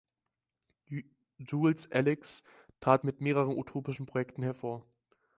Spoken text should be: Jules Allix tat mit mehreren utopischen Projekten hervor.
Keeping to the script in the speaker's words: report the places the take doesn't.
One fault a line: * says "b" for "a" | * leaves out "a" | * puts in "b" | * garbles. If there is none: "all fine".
all fine